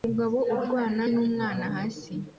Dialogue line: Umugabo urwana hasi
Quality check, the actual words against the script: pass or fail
fail